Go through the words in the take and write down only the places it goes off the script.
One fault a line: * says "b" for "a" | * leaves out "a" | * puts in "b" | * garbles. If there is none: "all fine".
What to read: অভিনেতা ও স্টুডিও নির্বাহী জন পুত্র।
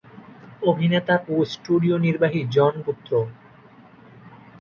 all fine